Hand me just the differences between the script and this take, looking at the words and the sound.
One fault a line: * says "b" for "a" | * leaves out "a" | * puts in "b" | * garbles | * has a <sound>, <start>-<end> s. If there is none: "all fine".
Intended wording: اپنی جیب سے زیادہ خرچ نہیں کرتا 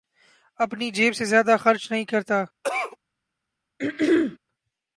* has a cough, 2.6-3.0 s
* has a throat clearing, 3.8-4.4 s